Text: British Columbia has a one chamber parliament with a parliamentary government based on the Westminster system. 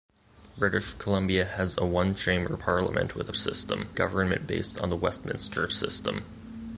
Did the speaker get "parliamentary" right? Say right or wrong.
wrong